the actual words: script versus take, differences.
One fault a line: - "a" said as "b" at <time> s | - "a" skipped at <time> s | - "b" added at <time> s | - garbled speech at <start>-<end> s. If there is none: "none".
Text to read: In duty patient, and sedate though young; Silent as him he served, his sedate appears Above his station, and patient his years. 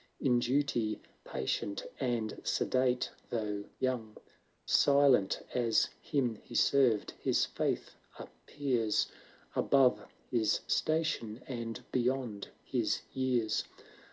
- "sedate" said as "faith" at 7.4 s
- "patient" said as "beyond" at 11.9 s